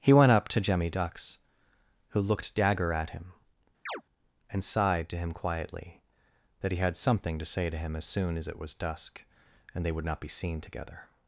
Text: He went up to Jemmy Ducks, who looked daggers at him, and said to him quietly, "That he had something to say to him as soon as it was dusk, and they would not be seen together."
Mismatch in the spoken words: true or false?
true